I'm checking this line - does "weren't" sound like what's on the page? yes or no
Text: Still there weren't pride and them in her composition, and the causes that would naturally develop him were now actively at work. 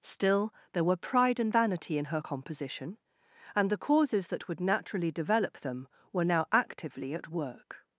no